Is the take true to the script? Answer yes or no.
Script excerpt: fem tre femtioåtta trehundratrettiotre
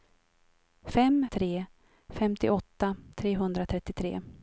yes